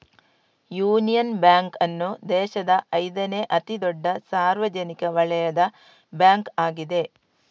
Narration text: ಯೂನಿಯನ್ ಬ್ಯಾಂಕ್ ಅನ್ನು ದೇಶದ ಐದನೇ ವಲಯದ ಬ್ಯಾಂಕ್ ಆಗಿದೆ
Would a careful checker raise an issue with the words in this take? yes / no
yes